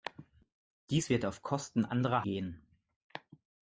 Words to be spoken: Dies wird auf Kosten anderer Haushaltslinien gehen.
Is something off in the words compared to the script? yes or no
yes